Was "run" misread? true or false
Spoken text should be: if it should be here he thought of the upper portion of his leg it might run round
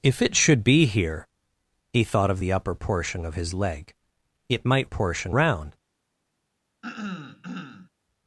true